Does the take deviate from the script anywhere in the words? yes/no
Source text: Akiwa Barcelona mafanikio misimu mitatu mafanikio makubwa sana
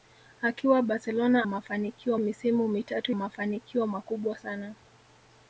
no